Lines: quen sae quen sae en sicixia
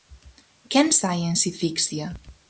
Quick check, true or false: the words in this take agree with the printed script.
false